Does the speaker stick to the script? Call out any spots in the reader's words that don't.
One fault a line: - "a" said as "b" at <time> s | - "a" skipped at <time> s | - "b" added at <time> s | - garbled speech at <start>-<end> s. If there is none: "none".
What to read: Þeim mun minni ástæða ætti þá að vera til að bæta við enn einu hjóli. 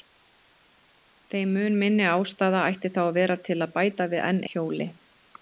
- "einu" skipped at 4.4 s